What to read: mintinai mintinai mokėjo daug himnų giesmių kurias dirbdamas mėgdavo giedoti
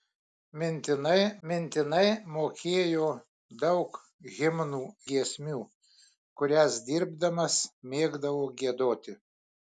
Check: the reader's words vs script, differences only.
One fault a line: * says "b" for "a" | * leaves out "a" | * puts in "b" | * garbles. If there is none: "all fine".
all fine